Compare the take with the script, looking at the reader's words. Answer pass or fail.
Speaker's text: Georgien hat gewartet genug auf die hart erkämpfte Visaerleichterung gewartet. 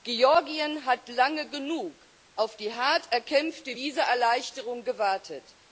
fail